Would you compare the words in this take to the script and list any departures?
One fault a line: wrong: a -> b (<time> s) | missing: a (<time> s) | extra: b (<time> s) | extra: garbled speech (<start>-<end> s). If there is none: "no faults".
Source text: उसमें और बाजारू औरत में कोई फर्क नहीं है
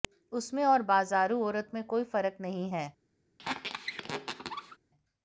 no faults